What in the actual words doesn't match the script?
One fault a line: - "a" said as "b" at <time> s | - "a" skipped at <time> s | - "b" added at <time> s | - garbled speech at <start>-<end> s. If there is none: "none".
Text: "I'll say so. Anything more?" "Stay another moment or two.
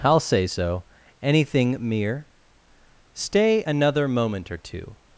- "more" said as "mere" at 1.8 s